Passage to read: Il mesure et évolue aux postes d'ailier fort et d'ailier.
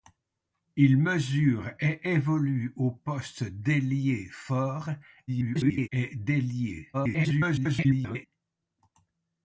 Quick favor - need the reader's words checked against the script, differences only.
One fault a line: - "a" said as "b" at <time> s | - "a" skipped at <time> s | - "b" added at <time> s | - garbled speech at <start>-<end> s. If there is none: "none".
- garbled speech at 5.3-5.9 s
- garbled speech at 6.9-8.3 s